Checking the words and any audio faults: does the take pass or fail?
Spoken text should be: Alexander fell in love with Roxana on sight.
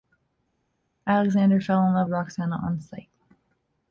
fail